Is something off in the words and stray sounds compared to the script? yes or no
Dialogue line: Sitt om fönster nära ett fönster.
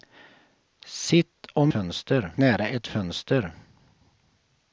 no